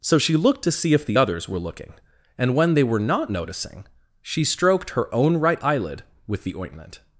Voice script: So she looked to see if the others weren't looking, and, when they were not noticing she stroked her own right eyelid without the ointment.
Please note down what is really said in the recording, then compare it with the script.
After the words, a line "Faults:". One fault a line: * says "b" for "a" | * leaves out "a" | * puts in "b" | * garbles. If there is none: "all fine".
So she looked to see if the others were looking, and, when they were not noticing she stroked her own right eyelid with the ointment.
Faults:
* says "were" for "weren't"
* says "with" for "without"